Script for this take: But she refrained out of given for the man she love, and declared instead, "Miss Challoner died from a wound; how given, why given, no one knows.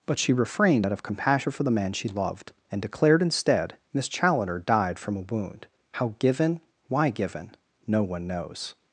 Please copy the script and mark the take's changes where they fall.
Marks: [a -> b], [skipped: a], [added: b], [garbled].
But she refrained out of [given -> compassion] for the man she [love, -> loved] and declared instead, "Miss Challoner died from a wound; how given, why given, no one knows.